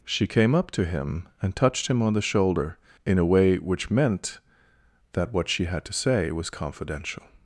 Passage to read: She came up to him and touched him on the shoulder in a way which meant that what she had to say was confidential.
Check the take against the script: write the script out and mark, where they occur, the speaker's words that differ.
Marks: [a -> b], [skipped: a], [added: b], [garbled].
She came up to him and touched him on the shoulder in a way which meant that what she had to say was confidential.